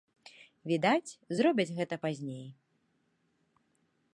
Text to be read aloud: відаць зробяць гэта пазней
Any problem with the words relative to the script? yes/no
no